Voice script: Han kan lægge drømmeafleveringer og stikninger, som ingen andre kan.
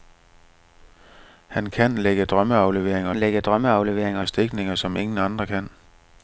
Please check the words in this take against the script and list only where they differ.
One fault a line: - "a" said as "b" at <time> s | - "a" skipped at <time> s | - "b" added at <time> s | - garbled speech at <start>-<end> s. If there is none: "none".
- "lægge drømmeafleveringer" added at 3.1 s